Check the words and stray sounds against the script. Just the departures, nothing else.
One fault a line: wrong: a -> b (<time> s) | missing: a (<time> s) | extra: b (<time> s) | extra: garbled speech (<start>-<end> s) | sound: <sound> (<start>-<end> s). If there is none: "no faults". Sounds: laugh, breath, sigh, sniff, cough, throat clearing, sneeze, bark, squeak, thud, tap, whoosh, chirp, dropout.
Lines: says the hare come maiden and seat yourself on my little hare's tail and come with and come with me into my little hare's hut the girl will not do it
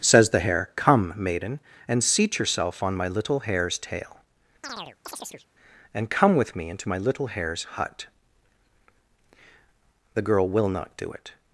sound: chirp (4.6-5.5 s)
missing: and come with (6.5 s)